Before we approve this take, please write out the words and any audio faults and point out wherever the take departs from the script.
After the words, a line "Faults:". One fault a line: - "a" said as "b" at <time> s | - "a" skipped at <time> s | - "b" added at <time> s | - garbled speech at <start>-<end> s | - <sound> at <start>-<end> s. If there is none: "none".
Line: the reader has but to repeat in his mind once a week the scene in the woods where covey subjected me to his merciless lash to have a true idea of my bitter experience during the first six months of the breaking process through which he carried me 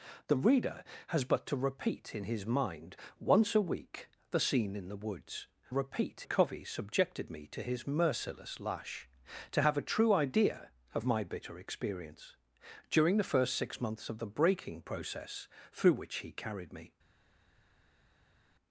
the reader has but to repeat in his mind once a week the scene in the woods repeat covey subjected me to his merciless lash to have a true idea of my bitter experience during the first six months of the breaking process through which he carried me
Faults:
- "where" said as "repeat" at 5.7 s